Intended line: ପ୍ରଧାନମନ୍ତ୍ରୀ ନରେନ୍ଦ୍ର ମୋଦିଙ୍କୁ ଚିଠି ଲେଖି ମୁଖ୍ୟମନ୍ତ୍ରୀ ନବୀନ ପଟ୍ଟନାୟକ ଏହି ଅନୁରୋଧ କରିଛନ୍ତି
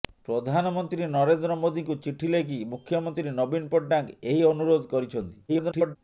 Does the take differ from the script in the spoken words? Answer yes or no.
yes